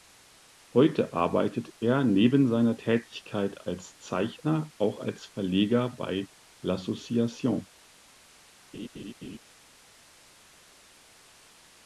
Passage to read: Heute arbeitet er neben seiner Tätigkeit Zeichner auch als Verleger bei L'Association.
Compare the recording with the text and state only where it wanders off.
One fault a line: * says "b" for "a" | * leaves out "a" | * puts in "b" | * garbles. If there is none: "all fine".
* puts in "als"